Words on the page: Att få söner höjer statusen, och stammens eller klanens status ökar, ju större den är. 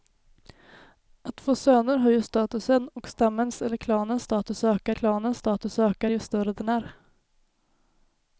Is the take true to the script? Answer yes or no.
no